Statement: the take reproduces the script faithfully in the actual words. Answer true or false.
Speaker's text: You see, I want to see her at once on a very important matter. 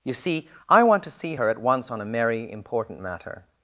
false